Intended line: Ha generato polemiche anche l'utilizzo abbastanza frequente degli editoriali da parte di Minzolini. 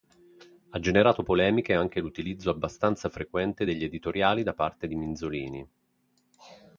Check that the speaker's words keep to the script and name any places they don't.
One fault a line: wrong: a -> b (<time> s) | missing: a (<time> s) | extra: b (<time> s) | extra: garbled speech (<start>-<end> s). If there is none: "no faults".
no faults